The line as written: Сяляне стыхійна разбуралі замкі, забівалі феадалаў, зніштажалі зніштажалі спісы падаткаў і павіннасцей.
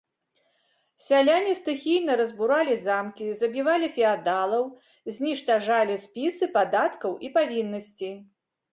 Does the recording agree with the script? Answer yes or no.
no